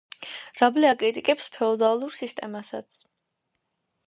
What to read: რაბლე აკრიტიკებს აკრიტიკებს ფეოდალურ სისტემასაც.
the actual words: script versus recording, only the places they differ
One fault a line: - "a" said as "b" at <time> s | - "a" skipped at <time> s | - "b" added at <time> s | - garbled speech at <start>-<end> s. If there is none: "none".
- "აკრიტიკებს" skipped at 1.5 s